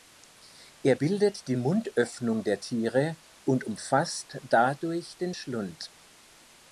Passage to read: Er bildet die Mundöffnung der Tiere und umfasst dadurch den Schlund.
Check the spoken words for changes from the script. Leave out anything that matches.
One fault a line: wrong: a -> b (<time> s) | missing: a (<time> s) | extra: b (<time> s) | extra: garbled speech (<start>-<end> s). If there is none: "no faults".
no faults